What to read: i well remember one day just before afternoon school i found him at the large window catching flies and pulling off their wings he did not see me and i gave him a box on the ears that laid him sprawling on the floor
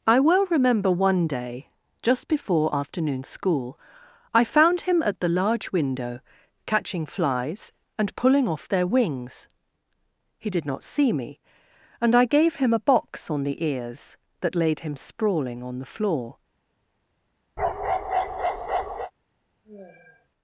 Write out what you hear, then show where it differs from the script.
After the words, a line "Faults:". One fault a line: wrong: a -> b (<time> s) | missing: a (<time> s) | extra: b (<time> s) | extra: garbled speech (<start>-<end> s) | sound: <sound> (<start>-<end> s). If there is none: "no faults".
i well remember one day just before afternoon school i found him at the large window catching flies and pulling off their wings he did not see me and i gave him a box on the ears that laid him sprawling on the floor
Faults:
sound: bark (17.6-19.1 s)
sound: sigh (19.6-20.3 s)